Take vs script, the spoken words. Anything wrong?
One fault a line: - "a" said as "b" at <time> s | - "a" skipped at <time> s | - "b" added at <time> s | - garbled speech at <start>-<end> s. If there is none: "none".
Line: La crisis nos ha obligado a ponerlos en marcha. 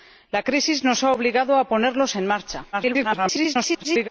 - garbled speech at 2.7-4.1 s